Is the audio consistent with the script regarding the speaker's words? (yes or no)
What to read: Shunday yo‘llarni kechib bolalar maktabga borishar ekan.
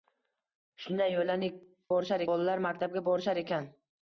no